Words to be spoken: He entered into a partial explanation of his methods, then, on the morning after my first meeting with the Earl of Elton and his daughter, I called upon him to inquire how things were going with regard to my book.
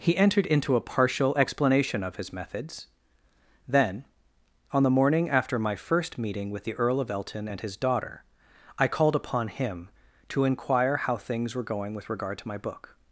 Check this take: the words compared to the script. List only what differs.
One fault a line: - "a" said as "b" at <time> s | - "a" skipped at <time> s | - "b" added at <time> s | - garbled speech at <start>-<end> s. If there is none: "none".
none